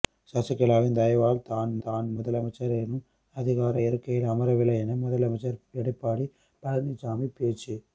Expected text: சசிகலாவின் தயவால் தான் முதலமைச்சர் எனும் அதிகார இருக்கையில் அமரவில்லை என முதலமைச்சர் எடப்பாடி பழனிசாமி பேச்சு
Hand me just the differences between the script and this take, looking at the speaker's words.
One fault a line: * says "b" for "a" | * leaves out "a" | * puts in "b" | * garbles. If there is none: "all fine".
* puts in "தான்"